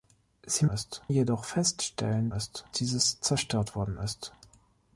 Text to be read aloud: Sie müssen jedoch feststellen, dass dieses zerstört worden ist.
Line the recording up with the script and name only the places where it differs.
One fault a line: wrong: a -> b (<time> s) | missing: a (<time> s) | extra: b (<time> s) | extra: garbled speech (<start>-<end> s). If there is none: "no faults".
wrong: müssen -> ist (0.7 s)
wrong: dass -> ist (2.3 s)